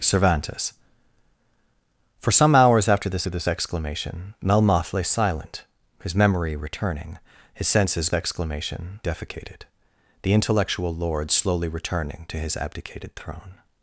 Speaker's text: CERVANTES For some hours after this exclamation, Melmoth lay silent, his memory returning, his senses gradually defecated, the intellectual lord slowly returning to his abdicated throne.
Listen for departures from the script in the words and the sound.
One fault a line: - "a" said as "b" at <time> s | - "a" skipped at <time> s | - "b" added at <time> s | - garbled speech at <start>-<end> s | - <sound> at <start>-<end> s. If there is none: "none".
- "this" added at 3.3 s
- "gradually" said as "exclamation" at 8.1 s